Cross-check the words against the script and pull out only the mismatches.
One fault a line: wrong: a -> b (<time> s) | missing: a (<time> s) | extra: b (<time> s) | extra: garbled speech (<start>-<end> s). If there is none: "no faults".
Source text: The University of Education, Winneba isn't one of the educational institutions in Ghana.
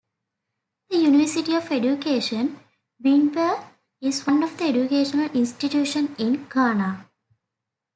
wrong: isn't -> is (4.0 s)